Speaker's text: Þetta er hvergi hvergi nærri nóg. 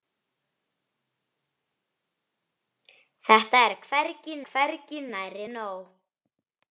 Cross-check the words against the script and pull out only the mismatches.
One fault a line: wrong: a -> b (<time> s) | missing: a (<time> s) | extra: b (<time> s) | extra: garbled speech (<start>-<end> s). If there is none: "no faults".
no faults